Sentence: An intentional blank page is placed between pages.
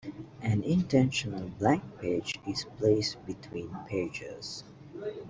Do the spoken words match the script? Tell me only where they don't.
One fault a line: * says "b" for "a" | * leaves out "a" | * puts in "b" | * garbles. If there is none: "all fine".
all fine